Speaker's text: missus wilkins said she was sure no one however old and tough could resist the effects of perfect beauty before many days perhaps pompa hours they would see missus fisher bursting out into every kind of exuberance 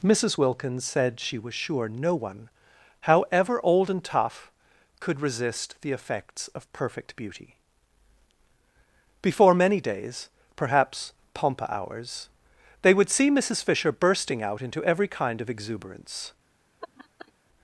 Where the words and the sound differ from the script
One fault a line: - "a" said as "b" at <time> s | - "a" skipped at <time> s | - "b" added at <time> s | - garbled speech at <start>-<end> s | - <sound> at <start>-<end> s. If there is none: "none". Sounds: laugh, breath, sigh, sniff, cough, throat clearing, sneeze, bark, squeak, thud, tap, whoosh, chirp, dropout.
- laugh at 16.8-17.3 s